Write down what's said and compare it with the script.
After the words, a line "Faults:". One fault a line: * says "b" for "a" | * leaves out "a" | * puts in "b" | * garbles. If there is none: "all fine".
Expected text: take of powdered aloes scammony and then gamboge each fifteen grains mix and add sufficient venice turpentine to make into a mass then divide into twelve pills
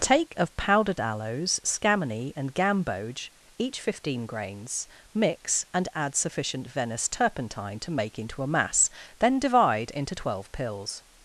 take of powdered aloes scammony and gamboge each fifteen grains mix and add sufficient venice turpentine to make into a mass then divide into twelve pills
Faults:
* leaves out "then"